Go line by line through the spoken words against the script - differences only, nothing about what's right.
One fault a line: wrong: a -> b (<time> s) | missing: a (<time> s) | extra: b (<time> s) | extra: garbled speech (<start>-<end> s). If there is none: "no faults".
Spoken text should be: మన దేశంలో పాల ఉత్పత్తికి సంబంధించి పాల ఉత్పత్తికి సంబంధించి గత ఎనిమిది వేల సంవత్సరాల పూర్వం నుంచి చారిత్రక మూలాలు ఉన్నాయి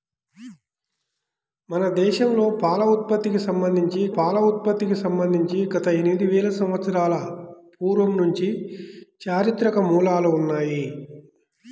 no faults